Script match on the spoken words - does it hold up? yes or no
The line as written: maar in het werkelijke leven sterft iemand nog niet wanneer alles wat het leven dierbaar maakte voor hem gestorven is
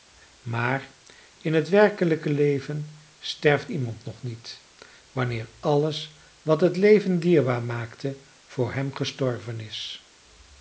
yes